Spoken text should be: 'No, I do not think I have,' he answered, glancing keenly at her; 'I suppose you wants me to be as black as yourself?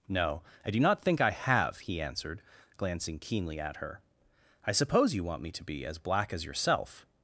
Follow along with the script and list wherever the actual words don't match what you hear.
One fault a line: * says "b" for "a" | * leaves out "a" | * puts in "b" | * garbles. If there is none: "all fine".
* says "want" for "wants"